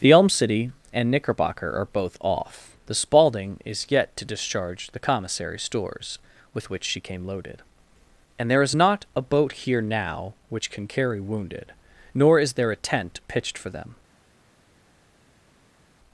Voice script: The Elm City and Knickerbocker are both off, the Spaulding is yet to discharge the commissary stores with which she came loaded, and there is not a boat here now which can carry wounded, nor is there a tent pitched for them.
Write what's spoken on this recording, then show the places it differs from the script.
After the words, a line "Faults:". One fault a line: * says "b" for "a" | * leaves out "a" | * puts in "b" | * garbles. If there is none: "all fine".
The Elm City and Knickerbocker are both off, the Spaulding is yet to discharge the commissary stores with which she came loaded, and there is not a boat here now which can carry wounded, nor is there a tent pitched for them.
Faults:
all fine